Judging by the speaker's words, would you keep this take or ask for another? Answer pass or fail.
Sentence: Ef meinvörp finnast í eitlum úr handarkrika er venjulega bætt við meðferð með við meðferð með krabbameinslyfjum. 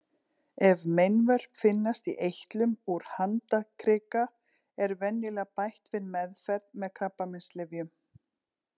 fail